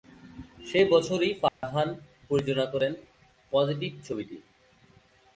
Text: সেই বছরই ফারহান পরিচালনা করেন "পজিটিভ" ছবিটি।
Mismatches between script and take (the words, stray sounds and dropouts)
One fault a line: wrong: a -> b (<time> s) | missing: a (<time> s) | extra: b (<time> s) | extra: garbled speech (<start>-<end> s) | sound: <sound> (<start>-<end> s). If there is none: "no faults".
sound: dropout (1.5-1.6 s)